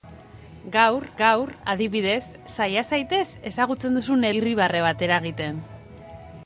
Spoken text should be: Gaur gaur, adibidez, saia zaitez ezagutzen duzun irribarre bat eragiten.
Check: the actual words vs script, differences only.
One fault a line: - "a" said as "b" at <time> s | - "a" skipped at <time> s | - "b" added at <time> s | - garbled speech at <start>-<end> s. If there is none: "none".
none